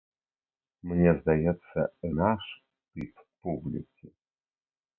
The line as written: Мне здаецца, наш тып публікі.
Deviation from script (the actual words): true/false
false